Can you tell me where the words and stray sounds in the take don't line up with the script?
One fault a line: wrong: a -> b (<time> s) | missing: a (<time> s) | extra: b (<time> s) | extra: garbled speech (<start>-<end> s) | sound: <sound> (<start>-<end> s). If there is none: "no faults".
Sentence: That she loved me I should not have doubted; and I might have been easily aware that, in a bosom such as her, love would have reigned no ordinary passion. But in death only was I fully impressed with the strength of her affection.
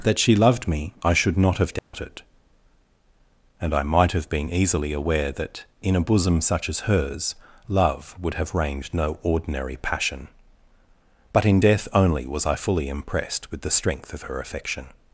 sound: dropout (1.8-1.9 s)
wrong: her -> hers (6.9 s)